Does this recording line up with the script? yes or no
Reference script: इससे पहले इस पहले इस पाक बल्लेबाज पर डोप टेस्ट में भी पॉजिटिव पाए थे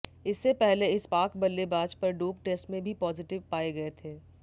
no